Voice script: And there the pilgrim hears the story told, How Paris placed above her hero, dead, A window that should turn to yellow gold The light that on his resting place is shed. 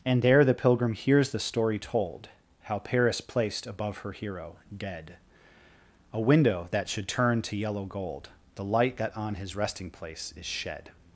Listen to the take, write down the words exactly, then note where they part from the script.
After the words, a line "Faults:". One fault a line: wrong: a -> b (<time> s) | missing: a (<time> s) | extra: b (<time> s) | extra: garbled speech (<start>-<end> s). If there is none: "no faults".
And there the pilgrim hears the story told, How Paris placed above her hero, dead, A window that should turn to yellow gold The light that on his resting place is shed.
Faults:
no faults